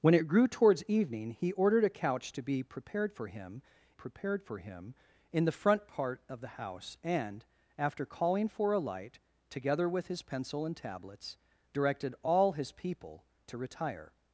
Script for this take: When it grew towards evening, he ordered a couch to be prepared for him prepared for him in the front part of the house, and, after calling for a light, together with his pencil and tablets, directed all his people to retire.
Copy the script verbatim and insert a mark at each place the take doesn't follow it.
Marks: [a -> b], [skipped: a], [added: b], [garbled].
When it grew towards evening, he ordered a couch to be prepared for him prepared for him in the front part of the house, and, after calling for a light, together with his pencil and tablets, directed all his people to retire.